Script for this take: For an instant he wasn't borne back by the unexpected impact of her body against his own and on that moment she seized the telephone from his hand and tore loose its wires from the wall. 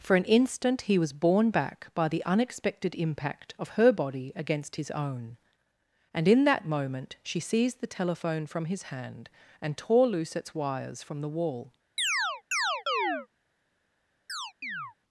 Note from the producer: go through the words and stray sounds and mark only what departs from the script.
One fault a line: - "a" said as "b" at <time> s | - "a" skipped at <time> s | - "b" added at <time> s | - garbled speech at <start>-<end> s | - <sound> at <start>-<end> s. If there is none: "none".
- "wasn't" said as "was" at 1.0 s
- "on" said as "in" at 6.2 s
- chirp at 12.0-13.3 s
- chirp at 14.3-14.9 s